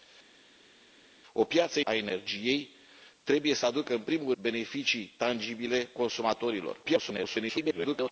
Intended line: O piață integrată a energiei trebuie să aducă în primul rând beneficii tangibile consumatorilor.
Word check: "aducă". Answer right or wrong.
right